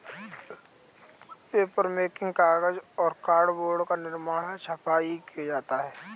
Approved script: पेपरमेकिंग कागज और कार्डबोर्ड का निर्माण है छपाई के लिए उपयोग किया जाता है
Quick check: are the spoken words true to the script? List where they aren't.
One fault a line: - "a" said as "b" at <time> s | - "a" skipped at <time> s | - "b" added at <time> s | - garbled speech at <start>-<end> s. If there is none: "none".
- "के लिए उपयोग" skipped at 5.2 s